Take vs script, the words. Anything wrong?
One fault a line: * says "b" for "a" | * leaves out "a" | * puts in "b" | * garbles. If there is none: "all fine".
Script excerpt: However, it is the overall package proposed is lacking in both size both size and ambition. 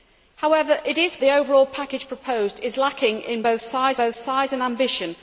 all fine